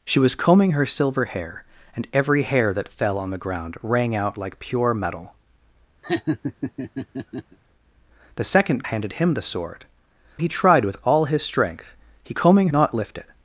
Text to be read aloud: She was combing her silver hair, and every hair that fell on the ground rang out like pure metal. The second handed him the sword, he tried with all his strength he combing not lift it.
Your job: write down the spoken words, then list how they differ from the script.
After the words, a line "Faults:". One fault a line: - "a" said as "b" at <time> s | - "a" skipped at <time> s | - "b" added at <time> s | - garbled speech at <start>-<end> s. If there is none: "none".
She was combing her silver hair, and every hair that fell on the ground rang out like pure metal. The second handed him the sword, he tried with all his strength he combing not lift it.
Faults:
none